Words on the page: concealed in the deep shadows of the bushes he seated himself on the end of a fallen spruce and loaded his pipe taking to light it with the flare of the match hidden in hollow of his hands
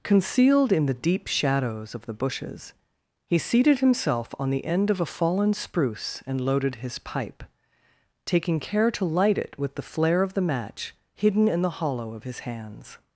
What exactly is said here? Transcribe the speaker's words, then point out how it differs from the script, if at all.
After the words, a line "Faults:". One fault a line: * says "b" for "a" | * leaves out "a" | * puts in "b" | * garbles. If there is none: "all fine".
concealed in the deep shadows of the bushes he seated himself on the end of a fallen spruce and loaded his pipe taking care to light it with the flare of the match hidden in the hollow of his hands
Faults:
* puts in "care"
* puts in "the"